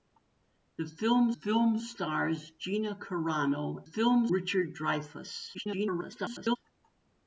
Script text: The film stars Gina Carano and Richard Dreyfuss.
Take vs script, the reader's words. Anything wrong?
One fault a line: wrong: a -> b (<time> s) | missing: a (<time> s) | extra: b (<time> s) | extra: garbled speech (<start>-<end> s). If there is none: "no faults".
extra: film (1.3 s)
wrong: and -> film (3.8 s)
extra: garbled speech (5.5-6.6 s)